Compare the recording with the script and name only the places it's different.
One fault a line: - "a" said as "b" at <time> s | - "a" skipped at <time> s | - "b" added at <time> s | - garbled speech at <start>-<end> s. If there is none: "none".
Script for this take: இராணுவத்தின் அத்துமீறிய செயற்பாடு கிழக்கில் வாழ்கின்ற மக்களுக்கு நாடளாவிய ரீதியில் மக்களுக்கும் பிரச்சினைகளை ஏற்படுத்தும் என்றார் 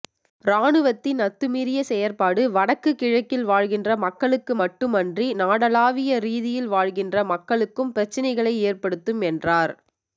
- "வடக்கு" added at 2.5 s
- "மட்டுமன்றி" added at 4.6 s
- "வாழ்கின்ற" added at 6.7 s